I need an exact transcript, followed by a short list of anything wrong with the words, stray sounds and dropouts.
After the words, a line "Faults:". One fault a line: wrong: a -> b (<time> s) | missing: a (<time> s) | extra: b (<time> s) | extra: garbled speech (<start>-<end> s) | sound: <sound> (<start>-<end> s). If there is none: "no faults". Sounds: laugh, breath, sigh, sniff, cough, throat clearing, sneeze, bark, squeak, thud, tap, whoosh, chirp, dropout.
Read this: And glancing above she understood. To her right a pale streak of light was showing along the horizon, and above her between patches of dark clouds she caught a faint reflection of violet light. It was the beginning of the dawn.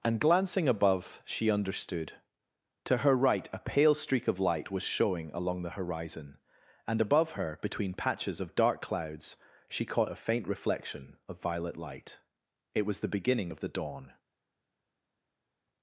And glancing above she understood. To her right a pale streak of light was showing along the horizon, and above her between patches of dark clouds she caught a faint reflection of violet light. It was the beginning of the dawn.
Faults:
no faults